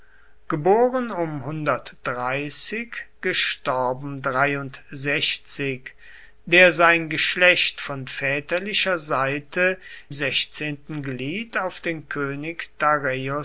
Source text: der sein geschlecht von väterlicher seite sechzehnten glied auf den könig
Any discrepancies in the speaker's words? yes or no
no